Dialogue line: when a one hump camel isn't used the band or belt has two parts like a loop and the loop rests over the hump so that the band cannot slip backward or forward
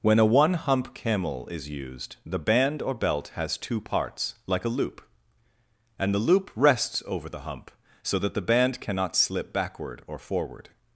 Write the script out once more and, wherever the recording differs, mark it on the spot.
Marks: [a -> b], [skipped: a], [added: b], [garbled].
when a one hump camel [isn't -> is] used the band or belt has two parts like a loop and the loop rests over the hump so that the band cannot slip backward or forward